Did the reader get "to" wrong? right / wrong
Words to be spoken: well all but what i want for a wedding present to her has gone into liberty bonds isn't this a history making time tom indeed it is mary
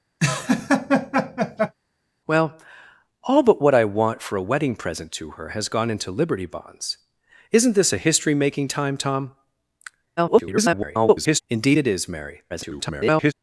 right